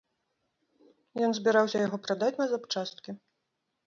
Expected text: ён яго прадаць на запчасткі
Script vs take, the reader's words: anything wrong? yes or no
yes